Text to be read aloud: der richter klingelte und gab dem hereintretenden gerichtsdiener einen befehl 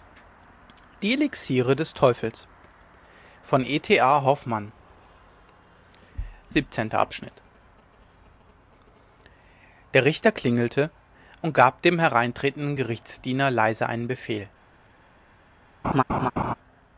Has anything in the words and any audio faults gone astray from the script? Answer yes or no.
yes